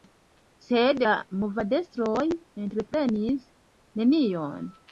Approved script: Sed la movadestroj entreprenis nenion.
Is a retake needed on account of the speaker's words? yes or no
no